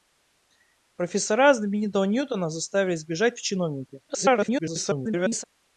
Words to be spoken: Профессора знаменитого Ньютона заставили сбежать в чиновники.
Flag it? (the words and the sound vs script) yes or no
yes